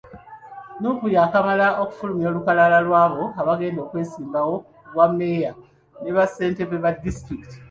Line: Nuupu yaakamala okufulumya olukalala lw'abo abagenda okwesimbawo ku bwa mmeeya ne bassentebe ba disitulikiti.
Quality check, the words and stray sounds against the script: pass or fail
pass